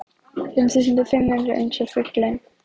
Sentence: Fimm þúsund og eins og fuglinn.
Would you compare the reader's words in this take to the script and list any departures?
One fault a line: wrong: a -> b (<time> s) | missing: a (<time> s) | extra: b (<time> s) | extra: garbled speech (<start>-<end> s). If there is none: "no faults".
extra: fimm hundruð (1.1 s)